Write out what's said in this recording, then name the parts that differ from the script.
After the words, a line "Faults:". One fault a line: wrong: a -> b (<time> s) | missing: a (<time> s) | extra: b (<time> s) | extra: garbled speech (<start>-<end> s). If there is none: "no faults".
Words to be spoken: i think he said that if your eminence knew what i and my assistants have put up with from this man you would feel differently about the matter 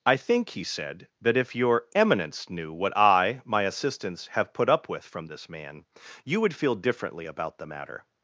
i think he said that if your eminence knew what i my assistants have put up with from this man you would feel differently about the matter
Faults:
missing: and (3.4 s)